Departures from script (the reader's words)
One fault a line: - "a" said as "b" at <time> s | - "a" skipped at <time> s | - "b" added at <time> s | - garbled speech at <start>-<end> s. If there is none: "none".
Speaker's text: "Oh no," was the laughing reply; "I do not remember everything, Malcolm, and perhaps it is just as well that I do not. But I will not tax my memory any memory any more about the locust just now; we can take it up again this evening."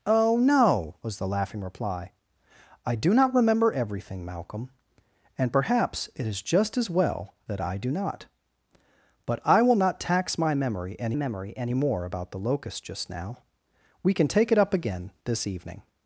none